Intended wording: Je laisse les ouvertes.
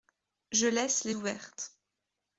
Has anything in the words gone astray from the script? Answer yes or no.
no